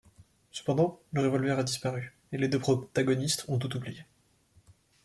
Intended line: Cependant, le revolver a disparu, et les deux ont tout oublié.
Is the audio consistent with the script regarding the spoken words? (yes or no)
no